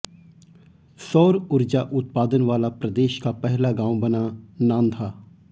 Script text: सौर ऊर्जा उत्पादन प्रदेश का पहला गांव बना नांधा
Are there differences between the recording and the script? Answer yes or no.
yes